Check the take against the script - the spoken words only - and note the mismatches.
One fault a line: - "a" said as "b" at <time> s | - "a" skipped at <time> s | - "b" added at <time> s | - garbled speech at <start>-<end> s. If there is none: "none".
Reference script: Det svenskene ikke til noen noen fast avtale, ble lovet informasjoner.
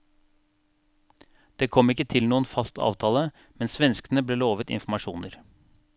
- "svenskene" said as "kom" at 1.8 s
- "noen" skipped at 2.5 s
- "men svenskene" added at 3.6 s